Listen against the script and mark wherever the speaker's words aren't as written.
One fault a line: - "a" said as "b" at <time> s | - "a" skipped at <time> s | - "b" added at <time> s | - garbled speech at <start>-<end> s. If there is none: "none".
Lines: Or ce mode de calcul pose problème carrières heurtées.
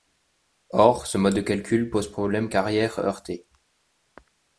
none